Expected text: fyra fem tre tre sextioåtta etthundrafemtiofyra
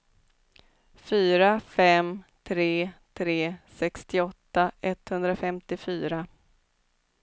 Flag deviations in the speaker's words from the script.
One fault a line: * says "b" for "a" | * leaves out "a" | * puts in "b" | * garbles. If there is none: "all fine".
all fine